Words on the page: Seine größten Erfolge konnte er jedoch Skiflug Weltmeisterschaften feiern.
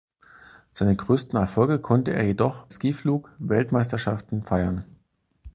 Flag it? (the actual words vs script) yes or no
no